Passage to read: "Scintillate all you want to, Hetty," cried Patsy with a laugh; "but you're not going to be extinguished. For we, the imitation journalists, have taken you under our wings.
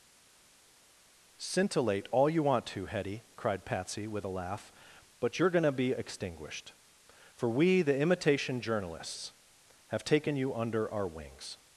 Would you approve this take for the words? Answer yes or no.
no